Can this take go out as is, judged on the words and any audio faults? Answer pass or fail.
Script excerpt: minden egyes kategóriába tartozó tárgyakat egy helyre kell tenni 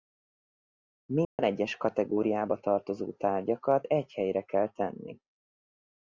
fail